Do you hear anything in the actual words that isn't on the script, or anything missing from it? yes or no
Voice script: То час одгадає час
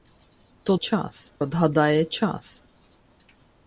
no